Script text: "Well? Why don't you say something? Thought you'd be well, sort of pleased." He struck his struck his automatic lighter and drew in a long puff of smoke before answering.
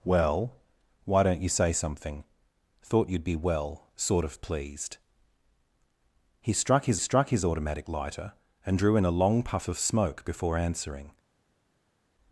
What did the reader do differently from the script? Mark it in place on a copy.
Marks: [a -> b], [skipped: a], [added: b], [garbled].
"Well? Why don't you say something? Thought you'd be well, sort of pleased." He struck his struck his automatic lighter and drew in a long puff of smoke before answering.